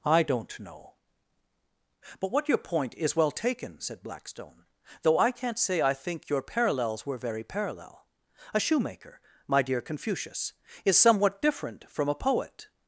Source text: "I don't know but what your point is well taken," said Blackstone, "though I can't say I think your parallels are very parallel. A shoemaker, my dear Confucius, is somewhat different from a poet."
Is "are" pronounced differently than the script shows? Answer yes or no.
yes